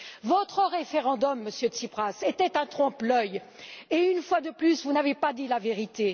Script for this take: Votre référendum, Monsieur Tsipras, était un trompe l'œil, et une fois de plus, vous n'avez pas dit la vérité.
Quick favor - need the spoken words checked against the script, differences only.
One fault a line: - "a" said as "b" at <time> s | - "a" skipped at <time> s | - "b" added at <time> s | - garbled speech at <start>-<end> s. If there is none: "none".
none